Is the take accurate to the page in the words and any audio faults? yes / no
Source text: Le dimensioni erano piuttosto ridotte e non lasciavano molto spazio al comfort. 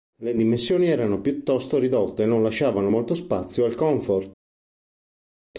yes